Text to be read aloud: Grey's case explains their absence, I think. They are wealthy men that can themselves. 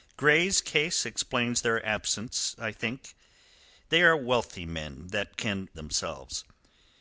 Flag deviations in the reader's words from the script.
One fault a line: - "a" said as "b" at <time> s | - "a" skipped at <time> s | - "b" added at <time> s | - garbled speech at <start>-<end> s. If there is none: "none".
none